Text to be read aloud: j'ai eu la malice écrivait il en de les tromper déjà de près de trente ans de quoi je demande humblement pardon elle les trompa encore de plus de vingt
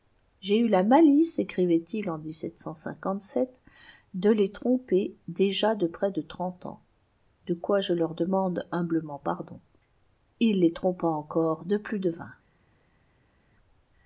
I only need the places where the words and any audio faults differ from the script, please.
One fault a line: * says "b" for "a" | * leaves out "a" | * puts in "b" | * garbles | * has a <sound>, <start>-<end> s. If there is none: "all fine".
* puts in "leur"
* says "il" for "elle"